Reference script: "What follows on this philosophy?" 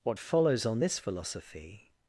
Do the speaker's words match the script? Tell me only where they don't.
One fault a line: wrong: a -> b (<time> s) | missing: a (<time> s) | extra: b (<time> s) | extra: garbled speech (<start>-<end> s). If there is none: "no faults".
no faults